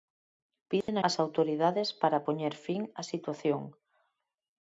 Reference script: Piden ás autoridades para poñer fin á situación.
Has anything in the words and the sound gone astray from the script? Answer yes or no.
yes